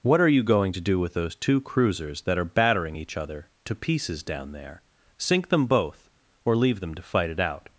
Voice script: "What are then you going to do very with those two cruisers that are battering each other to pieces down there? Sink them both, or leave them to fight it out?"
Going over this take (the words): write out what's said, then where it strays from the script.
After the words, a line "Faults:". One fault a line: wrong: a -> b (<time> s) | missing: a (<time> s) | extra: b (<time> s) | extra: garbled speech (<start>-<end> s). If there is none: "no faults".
"What are you going to do with those two cruisers that are battering each other to pieces down there? Sink them both, or leave them to fight it out?"
Faults:
missing: then (0.3 s)
missing: very (1.0 s)